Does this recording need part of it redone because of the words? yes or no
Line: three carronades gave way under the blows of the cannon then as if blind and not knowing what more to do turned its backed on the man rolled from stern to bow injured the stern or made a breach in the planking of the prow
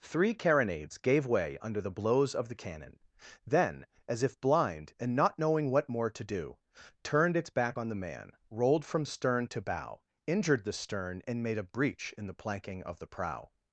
yes